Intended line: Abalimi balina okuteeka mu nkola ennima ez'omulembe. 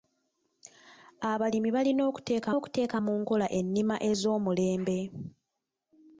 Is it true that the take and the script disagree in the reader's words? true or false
true